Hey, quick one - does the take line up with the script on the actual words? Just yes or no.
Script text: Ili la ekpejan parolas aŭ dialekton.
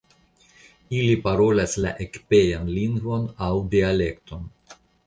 no